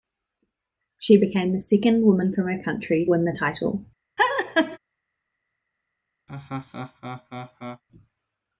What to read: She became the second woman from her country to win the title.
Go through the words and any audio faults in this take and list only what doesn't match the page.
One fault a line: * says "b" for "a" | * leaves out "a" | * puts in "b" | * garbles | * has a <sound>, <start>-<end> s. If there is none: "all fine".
* leaves out "to"
* has a laugh, 4.2-4.8 s
* has a laugh, 6.3-7.8 s